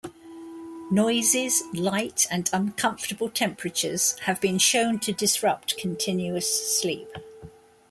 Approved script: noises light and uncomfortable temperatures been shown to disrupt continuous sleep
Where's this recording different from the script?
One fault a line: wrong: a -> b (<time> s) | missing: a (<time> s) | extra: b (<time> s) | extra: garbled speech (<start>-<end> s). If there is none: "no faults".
extra: have (4.2 s)